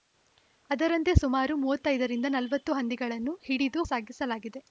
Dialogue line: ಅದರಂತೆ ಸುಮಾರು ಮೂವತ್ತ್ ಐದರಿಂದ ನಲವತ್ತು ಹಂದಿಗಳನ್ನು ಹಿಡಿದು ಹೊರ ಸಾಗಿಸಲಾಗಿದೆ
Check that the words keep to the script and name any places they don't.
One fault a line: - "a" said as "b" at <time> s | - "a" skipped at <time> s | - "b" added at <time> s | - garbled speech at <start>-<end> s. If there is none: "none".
- "ಹೊರ" skipped at 3.8 s